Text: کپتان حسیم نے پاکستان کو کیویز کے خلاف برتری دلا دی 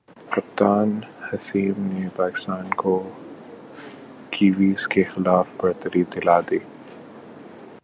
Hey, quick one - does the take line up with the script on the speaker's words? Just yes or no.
yes